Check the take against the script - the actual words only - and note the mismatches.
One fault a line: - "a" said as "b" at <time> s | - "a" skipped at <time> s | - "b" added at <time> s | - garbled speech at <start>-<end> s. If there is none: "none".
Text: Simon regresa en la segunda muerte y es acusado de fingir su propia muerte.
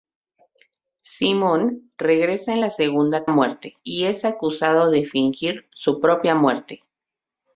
none